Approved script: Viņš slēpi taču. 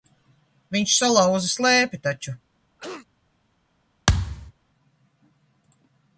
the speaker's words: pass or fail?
fail